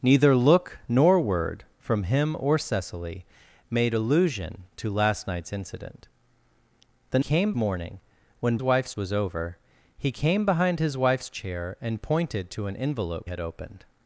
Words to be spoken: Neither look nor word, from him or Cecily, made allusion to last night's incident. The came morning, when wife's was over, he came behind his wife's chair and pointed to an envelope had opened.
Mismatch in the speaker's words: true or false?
false